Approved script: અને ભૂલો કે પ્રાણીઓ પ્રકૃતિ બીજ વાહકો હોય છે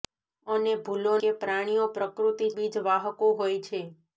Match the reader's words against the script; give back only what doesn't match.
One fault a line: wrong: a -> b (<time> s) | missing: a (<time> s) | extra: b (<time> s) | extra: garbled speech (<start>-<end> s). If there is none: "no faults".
no faults